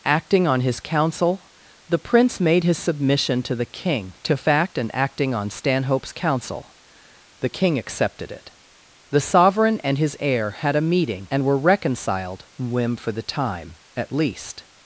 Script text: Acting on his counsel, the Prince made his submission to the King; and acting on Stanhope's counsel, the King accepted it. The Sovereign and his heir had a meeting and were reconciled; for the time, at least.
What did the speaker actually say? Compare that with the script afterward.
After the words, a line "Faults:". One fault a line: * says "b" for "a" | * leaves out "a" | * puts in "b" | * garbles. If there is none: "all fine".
Acting on his counsel, the Prince made his submission to the King; to fact and acting on Stanhope's counsel, the King accepted it. The Sovereign and his heir had a meeting and were reconciled; whim for the time, at least.
Faults:
* puts in "to fact"
* puts in "whim"